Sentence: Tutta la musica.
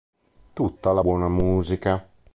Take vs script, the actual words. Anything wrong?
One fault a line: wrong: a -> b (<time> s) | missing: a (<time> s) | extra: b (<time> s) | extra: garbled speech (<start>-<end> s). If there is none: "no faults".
extra: buona (1.0 s)